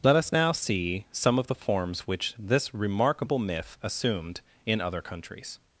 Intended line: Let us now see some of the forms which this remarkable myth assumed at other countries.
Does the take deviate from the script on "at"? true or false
true